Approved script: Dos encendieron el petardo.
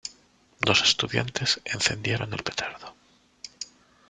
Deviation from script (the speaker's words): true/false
true